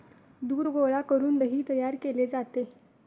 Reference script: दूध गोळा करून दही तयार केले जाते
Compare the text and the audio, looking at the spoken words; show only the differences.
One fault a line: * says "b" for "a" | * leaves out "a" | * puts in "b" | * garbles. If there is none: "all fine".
all fine